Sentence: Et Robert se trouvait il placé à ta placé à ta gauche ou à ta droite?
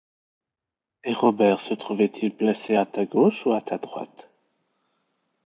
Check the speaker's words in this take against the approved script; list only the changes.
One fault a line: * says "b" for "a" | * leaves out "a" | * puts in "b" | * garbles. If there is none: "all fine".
* leaves out "placé à ta"